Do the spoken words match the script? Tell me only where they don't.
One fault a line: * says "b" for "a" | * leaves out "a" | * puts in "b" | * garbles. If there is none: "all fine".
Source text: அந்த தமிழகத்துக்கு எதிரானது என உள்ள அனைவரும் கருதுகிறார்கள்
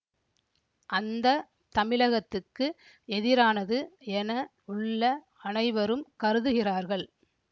all fine